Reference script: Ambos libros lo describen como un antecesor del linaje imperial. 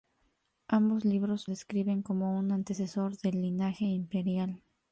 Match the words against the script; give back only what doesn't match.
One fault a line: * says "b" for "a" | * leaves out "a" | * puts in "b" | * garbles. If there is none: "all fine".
* leaves out "lo"